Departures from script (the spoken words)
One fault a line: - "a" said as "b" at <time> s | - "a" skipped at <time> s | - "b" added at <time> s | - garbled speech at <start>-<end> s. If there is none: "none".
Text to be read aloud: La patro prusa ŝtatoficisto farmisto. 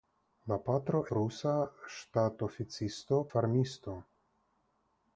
none